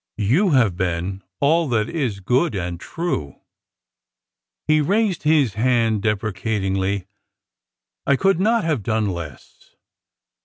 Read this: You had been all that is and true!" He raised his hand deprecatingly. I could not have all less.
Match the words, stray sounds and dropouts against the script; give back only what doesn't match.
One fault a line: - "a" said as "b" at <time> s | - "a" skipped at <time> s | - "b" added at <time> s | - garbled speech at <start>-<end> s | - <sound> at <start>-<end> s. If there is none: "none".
- "had" said as "have" at 0.5 s
- "good" added at 2.2 s
- "all" said as "done" at 8.8 s